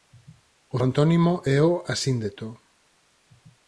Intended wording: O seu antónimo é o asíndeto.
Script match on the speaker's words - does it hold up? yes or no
no